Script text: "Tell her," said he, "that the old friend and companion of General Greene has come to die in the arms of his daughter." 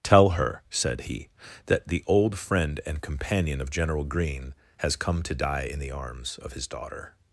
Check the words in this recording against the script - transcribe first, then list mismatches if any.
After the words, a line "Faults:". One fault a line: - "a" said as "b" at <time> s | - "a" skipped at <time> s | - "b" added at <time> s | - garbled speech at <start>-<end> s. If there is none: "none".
"Tell her," said he, "that the old friend and companion of General Greene has come to die in the arms of his daughter."
Faults:
none